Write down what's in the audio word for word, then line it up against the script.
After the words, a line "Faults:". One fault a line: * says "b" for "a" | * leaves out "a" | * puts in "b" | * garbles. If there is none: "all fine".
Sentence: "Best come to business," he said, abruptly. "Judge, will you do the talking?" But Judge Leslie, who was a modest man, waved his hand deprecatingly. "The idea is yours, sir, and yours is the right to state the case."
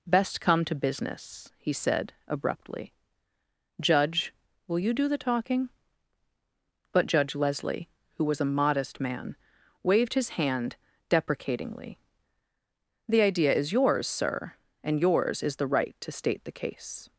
"Best come to business," he said, abruptly. "Judge, will you do the talking?" But Judge Leslie, who was a modest man, waved his hand deprecatingly. "The idea is yours, sir, and yours is the right to state the case."
Faults:
all fine